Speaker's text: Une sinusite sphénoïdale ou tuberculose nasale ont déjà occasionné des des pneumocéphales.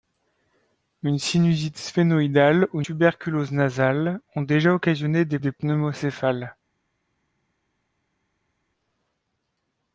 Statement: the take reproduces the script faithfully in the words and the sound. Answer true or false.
true